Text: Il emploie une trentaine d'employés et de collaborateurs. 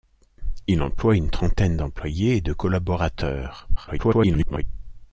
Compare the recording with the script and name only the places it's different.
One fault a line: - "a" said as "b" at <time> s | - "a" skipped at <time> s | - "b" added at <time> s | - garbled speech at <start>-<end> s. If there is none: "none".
- garbled speech at 3.8-4.6 s